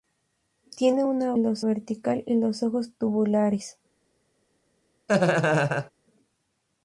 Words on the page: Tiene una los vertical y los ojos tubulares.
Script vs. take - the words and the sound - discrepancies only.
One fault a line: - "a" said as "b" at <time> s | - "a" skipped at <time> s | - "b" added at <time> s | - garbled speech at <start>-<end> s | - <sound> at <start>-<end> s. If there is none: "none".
- laugh at 5.1-5.9 s